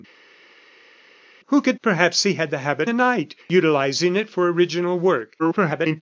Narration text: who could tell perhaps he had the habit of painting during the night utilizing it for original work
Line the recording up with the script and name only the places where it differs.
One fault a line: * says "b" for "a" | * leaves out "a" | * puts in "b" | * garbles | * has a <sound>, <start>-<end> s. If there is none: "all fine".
* leaves out "tell"
* leaves out "of painting during"
* garbles